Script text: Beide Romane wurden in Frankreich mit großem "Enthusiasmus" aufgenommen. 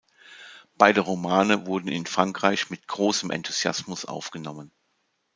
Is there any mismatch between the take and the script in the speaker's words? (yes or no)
no